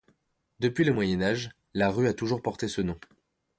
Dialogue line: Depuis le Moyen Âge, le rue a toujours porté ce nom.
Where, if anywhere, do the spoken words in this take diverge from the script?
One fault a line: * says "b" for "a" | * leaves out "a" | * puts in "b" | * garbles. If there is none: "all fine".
* says "la" for "le"